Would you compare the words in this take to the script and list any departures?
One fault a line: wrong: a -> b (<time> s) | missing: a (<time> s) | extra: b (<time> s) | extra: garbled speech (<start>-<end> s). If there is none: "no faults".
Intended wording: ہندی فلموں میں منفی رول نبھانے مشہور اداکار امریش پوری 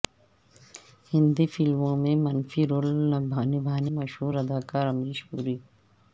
no faults